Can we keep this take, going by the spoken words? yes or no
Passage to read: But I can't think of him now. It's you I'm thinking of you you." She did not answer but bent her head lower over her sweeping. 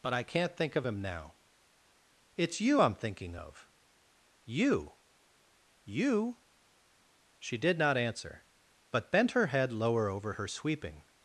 yes